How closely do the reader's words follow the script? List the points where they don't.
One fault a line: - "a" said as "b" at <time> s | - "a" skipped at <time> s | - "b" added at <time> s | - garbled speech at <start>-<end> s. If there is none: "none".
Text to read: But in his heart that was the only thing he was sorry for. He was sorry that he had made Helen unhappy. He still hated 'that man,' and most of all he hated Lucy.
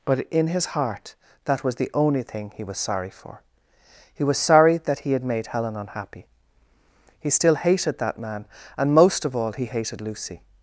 none